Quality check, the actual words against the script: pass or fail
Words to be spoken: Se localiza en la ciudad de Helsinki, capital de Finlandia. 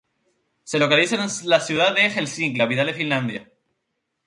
pass